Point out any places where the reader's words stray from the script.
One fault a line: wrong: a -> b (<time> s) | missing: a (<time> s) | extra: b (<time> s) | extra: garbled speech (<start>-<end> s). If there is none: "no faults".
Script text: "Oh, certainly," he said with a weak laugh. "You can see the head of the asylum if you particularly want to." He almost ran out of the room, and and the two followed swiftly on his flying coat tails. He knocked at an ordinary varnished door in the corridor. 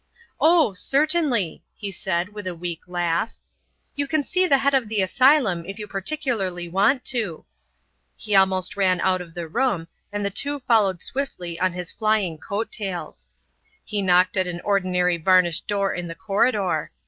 missing: and (10.2 s)